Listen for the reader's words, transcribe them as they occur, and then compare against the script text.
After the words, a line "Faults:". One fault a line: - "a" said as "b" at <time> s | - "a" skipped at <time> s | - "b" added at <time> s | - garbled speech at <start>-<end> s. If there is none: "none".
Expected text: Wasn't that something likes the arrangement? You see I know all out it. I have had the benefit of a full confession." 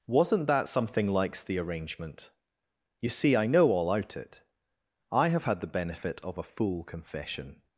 Wasn't that something likes the arrangement? You see I know all out it. I have had the benefit of a full confession."
Faults:
none